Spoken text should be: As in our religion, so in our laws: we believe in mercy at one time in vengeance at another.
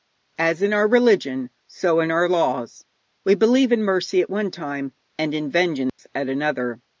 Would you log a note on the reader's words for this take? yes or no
yes